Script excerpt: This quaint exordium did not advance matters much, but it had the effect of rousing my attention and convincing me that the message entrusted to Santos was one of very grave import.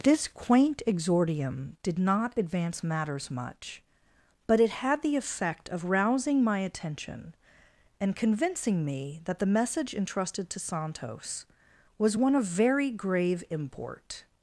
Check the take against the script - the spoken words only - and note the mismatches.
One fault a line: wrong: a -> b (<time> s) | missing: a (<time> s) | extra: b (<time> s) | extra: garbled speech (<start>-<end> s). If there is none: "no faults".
no faults